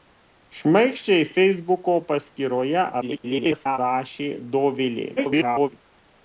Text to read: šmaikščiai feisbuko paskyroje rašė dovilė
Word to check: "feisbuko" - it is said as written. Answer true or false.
true